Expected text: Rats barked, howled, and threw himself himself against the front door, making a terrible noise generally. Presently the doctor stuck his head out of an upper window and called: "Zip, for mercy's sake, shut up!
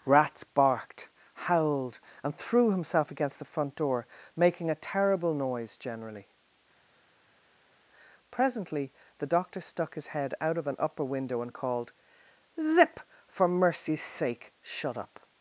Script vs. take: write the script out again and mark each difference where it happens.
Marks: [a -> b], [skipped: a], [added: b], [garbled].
Rats barked, howled, and threw himself [skipped: himself] against the front door, making a terrible noise generally. Presently the doctor stuck his head out of an upper window and called: "Zip, for mercy's sake, shut up!